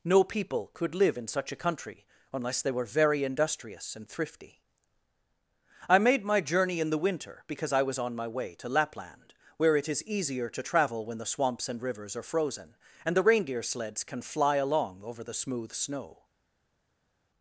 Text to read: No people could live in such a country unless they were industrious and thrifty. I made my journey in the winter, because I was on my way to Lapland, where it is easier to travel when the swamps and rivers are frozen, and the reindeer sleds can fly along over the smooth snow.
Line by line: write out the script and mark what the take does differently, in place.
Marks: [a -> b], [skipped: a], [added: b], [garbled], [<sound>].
No people could live in such a country unless they were [added: very] industrious and thrifty. I made my journey in the winter, because I was on my way to Lapland, where it is easier to travel when the swamps and rivers are frozen, and the reindeer sleds can fly along over the smooth snow.